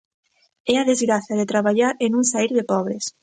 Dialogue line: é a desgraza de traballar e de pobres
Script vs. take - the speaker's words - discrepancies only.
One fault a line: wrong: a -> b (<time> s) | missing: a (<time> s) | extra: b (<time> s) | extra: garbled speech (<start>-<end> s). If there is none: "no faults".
extra: non saír (2.1 s)